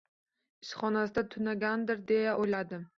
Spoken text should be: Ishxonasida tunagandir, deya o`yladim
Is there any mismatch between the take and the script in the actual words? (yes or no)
no